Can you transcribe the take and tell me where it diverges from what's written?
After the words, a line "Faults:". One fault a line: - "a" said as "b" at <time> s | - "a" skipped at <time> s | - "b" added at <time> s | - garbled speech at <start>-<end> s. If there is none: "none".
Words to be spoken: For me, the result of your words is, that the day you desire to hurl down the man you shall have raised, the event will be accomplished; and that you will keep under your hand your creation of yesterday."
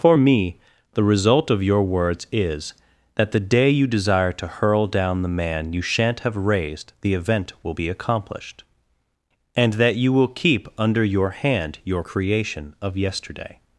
For me, the result of your words is, that the day you desire to hurl down the man you shan't have raised, the event will be accomplished; and that you will keep under your hand your creation of yesterday."
Faults:
- "shall" said as "shan't" at 5.8 s